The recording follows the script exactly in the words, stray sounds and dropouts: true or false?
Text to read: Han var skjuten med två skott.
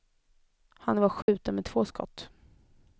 false